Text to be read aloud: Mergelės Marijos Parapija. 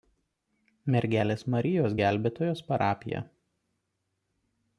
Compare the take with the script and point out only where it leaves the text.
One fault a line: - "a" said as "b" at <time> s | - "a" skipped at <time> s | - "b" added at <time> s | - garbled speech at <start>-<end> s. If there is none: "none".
- "Gelbėtojos" added at 2.0 s